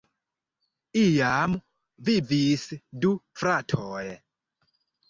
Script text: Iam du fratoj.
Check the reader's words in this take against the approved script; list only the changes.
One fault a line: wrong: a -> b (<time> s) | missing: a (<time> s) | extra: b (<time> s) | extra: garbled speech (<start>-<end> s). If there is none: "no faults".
extra: vivis (2.1 s)